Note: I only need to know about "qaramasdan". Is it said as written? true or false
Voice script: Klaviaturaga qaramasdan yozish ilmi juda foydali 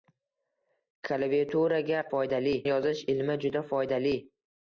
false